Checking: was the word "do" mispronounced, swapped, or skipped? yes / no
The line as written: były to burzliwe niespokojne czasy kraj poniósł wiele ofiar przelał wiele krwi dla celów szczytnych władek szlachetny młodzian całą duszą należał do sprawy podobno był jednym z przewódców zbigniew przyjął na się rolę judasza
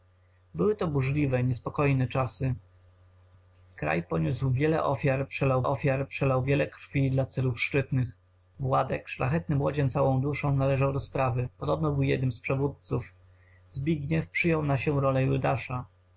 no